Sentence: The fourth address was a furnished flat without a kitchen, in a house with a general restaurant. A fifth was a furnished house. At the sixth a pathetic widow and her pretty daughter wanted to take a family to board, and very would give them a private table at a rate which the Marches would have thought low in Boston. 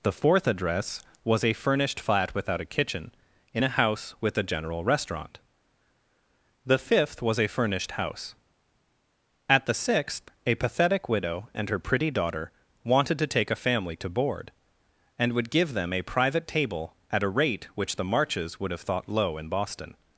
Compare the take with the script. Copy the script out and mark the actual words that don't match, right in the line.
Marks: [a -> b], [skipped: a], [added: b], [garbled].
The fourth address was a furnished flat without a kitchen, in a house with a general restaurant. [A -> The] fifth was a furnished house. At the sixth a pathetic widow and her pretty daughter wanted to take a family to board, and [skipped: very] would give them a private table at a rate which the Marches would have thought low in Boston.